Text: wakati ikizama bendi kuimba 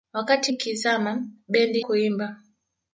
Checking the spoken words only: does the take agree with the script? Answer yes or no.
yes